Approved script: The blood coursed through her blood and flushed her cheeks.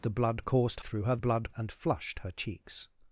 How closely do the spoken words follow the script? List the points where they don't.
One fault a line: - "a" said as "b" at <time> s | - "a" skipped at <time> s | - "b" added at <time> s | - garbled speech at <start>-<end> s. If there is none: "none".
none